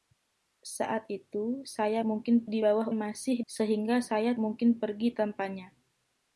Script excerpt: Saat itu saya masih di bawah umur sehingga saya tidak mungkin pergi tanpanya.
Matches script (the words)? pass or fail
fail